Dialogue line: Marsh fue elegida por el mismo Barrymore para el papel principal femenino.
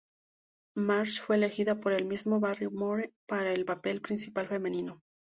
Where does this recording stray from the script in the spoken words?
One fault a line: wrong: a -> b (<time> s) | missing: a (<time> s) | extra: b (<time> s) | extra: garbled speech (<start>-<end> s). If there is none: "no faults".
no faults